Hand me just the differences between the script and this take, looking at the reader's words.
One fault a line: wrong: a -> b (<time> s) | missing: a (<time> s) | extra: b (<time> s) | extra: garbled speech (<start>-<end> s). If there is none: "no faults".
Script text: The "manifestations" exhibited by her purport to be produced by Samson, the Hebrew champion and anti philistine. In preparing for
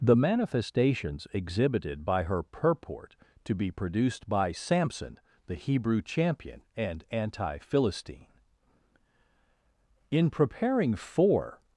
no faults